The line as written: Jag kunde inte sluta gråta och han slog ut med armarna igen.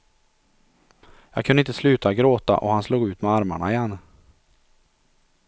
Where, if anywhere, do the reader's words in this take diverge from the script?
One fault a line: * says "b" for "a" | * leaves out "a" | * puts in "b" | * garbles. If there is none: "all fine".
all fine